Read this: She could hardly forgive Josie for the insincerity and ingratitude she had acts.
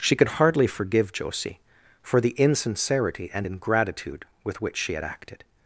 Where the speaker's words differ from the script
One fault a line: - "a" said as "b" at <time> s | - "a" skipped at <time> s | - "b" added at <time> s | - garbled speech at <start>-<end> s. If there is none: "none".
- "with which" added at 4.4 s
- "acts" said as "acted" at 5.0 s